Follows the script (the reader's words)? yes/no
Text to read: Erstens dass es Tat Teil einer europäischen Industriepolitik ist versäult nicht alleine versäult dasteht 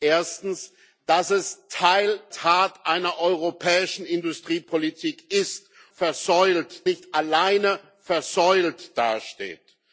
yes